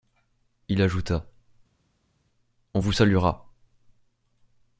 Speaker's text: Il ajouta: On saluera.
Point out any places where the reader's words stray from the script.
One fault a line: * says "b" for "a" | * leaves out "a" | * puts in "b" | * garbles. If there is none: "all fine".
* puts in "vous"